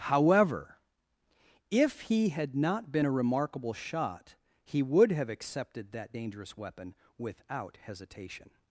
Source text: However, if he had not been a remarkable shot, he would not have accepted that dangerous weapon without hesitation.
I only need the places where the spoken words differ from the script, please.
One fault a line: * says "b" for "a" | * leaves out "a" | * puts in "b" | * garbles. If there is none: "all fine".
* leaves out "not"